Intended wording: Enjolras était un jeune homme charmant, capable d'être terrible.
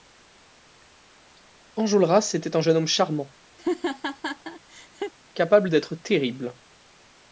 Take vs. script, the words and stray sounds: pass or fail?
fail